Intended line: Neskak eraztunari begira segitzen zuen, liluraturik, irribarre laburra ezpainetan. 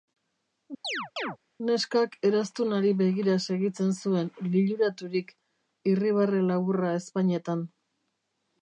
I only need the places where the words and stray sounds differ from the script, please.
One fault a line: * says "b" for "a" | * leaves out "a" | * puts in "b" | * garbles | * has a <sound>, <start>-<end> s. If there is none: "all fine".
* has a chirp, 0.8-1.4 s